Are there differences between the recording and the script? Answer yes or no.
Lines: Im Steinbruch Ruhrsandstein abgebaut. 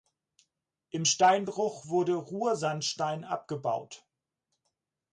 yes